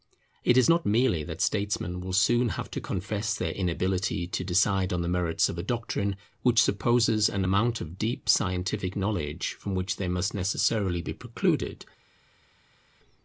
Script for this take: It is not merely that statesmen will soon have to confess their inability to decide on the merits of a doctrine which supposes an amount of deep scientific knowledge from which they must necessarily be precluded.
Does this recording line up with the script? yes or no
yes